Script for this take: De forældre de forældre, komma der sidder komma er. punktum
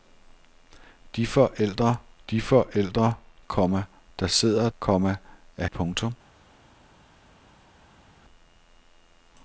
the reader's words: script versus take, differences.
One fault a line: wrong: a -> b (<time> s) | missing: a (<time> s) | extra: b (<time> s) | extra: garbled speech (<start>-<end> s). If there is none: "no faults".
no faults